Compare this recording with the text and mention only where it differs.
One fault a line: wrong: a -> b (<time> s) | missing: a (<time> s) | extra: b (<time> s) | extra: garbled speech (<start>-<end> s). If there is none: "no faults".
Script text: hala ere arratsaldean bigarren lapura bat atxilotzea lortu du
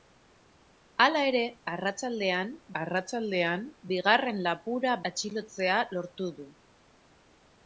extra: arratsaldean (2.8 s)
missing: bat (5.0 s)